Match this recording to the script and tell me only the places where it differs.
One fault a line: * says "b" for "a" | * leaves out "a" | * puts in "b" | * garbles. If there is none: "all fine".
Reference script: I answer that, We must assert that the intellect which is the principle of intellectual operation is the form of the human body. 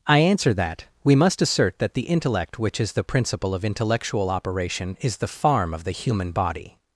* says "farm" for "form"